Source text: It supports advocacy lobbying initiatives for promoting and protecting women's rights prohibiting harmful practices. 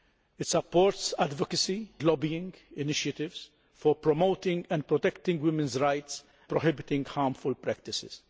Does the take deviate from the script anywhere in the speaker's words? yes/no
no